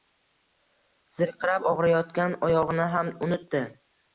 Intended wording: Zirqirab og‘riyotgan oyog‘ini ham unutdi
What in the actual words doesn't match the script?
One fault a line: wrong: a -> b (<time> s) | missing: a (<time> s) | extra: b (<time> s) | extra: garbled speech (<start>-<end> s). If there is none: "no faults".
no faults